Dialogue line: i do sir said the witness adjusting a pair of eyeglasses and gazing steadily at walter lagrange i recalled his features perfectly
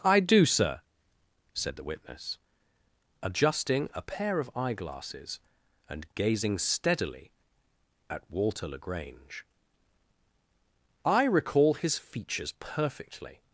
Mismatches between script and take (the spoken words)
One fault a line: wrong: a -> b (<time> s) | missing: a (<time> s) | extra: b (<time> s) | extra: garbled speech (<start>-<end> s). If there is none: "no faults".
wrong: recalled -> recall (11.2 s)